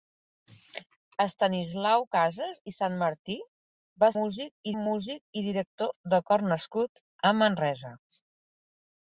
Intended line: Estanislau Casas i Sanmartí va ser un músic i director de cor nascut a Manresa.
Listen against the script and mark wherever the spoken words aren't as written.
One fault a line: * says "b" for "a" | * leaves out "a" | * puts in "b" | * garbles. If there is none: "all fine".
* says "músic" for "ser"